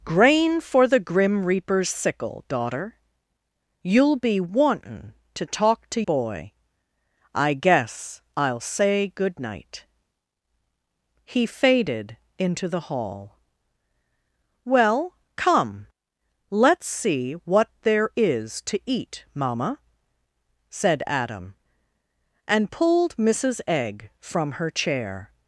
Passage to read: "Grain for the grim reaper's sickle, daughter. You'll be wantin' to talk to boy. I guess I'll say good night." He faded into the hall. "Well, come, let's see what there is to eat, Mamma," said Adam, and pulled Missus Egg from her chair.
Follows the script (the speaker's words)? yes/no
yes